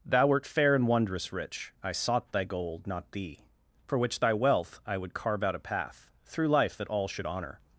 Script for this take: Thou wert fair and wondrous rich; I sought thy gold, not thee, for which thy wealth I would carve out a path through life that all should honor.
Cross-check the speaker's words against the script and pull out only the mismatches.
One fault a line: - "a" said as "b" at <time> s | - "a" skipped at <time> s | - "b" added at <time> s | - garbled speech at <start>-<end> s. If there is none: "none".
none